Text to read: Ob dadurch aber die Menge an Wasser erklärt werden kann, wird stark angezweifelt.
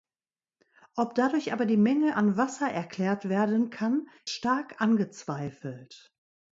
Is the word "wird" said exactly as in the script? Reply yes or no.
no